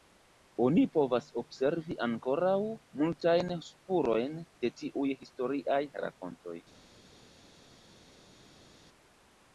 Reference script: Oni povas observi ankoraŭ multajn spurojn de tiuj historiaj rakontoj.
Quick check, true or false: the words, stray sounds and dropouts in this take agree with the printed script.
true